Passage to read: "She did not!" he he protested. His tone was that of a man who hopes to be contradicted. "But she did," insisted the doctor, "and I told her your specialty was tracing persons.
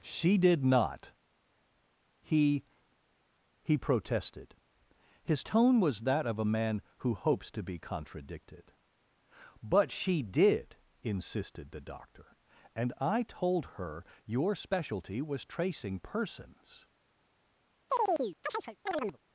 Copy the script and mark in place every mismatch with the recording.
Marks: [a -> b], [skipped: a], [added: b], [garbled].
"She did not!" he he protested. His tone was that of a man who hopes to be contradicted. "But she did," insisted the doctor, "and I told her your specialty was tracing persons.